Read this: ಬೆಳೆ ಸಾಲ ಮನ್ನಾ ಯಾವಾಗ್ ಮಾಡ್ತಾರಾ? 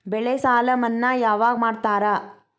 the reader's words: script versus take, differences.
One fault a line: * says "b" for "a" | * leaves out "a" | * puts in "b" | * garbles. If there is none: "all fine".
all fine